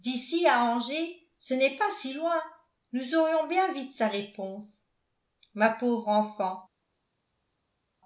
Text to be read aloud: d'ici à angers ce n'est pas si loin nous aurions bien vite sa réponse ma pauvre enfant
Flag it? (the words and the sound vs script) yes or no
no